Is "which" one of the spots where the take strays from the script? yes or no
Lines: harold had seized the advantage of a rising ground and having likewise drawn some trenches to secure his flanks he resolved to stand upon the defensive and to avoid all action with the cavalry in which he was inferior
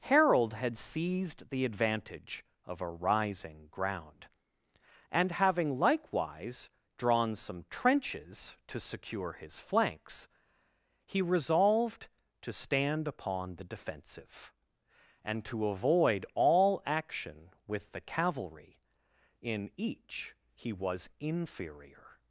yes